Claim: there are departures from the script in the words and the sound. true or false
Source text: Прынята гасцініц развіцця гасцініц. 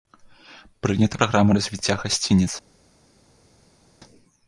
true